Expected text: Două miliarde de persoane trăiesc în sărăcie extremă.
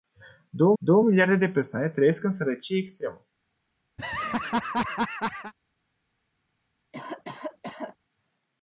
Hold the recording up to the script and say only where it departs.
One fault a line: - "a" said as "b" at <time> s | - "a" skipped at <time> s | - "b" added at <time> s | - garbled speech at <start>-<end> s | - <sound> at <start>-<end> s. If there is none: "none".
- "două" added at 0.8 s
- laugh at 4.0-5.5 s
- cough at 6.9-8.0 s